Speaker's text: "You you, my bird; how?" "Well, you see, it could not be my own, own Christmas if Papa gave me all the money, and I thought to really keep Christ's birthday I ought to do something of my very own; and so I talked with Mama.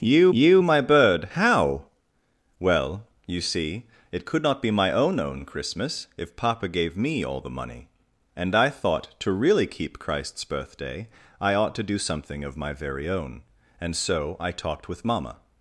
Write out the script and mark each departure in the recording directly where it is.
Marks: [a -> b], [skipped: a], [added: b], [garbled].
"You you, my bird; how?" "Well, you see, it could not be my own, own Christmas if Papa gave me all the money, and I thought to really keep Christ's birthday I ought to do something of my very own; and so I talked with Mama.